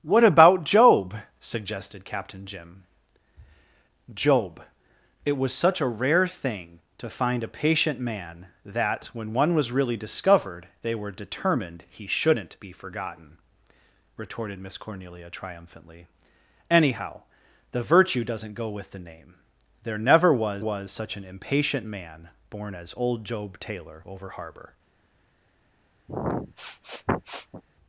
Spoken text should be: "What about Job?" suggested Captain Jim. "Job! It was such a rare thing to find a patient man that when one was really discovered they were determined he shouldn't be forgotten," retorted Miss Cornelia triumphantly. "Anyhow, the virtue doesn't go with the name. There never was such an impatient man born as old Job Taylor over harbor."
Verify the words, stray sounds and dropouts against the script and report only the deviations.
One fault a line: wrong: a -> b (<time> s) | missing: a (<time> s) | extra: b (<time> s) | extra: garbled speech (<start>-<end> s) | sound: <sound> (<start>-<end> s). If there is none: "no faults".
extra: was (20.6 s)
sound: sniff (26.1-27.6 s)